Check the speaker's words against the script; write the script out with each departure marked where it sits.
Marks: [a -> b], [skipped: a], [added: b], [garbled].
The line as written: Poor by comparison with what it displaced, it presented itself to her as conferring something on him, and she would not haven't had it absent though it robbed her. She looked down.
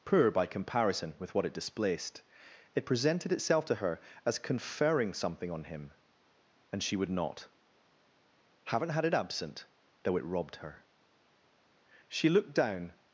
Poor by comparison with what it displaced, it presented itself to her as conferring something on him, and she would not haven't had it absent though it robbed her. She looked down.